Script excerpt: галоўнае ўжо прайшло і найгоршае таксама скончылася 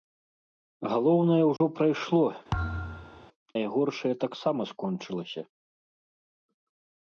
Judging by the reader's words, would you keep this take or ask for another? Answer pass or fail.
fail